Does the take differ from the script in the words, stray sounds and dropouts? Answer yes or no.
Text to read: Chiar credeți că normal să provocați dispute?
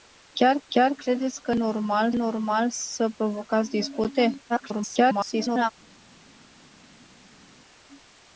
yes